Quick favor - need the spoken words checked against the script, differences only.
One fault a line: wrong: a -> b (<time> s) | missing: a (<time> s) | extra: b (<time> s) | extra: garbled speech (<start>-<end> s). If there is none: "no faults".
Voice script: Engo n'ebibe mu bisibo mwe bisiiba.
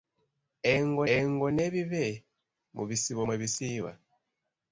extra: engo (1.2 s)